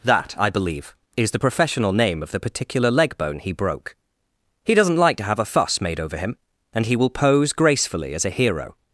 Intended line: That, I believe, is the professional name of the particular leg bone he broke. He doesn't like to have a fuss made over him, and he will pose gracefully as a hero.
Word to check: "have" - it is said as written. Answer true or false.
true